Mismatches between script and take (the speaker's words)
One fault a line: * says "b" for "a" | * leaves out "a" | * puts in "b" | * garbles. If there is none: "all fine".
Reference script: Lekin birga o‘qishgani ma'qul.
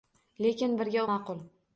* leaves out "o‘qishgani"